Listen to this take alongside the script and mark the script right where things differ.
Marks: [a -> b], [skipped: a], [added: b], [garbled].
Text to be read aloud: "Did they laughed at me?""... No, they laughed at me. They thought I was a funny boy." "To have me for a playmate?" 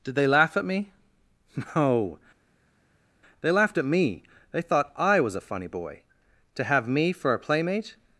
"Did they [laughed -> laugh] at me?""... No, they laughed at me. They thought I was a funny boy." "To have me for a playmate?"